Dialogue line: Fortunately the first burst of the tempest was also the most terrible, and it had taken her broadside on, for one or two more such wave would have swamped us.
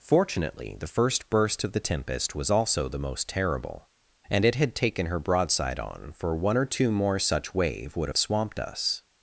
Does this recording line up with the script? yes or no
yes